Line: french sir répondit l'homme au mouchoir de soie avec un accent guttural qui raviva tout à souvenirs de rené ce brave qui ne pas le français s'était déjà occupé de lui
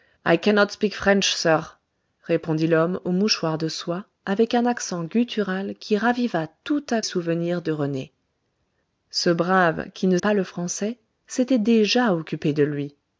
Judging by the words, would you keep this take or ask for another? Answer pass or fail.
pass